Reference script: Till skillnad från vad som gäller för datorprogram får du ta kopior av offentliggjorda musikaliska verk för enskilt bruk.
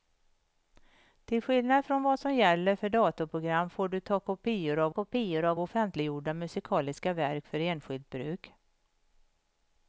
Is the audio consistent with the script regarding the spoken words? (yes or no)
no